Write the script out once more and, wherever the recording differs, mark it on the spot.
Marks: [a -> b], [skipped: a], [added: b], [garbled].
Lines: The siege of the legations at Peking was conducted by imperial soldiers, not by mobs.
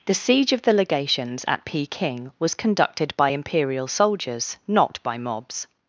The siege of the legations at Peking was conducted by imperial soldiers, not by mobs.